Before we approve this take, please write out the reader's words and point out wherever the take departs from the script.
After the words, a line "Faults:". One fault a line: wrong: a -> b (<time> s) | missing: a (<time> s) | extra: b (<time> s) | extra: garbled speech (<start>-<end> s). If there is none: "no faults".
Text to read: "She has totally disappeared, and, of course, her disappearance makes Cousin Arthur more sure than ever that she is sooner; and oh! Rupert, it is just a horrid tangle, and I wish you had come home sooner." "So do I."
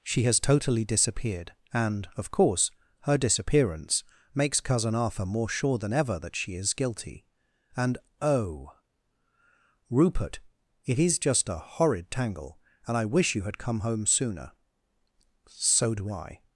"She has totally disappeared, and, of course, her disappearance makes Cousin Arthur more sure than ever that she is guilty; and oh! Rupert, it is just a horrid tangle, and I wish you had come home sooner." "So do I."
Faults:
wrong: sooner -> guilty (6.7 s)